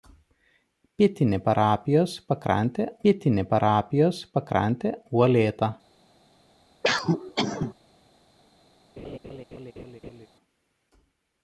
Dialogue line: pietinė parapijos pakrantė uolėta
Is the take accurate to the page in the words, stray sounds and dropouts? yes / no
no